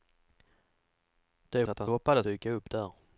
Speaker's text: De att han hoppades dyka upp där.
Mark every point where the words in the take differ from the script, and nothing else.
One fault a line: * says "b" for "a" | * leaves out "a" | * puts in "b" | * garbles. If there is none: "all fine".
all fine